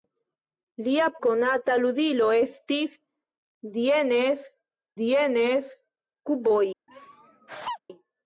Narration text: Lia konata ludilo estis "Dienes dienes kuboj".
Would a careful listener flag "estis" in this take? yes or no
no